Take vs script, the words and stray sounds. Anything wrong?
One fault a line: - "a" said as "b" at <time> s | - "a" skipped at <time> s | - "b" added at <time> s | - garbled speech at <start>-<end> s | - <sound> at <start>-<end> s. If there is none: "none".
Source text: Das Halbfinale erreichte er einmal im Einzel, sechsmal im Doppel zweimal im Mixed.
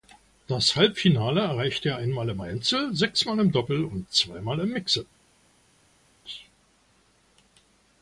- "und" added at 3.8 s